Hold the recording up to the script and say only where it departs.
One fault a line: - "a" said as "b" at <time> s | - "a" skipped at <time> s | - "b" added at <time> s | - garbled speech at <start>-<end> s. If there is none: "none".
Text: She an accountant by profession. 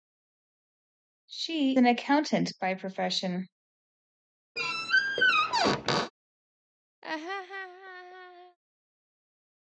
none